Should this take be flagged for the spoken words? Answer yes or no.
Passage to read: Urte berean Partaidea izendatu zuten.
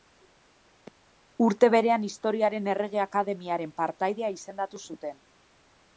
yes